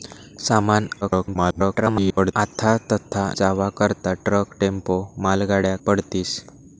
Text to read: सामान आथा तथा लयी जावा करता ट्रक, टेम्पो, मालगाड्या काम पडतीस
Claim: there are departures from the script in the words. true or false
true